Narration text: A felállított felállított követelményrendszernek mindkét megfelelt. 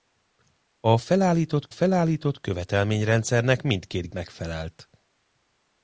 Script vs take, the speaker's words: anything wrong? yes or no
no